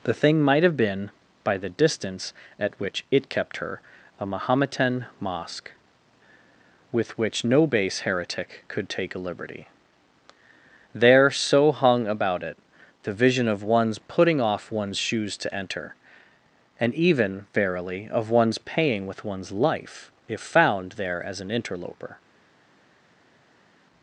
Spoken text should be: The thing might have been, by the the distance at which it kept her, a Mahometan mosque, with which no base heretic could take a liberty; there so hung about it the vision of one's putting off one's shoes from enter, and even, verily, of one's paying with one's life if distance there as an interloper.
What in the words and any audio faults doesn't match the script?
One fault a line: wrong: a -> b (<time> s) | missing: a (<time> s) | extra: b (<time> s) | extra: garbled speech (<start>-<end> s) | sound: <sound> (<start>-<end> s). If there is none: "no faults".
missing: the (1.7 s)
wrong: from -> to (15.4 s)
wrong: distance -> found (20.4 s)